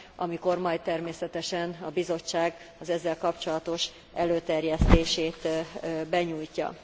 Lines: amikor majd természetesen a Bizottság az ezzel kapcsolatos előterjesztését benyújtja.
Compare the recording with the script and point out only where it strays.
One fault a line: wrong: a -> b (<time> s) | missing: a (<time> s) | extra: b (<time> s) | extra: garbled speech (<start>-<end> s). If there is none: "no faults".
no faults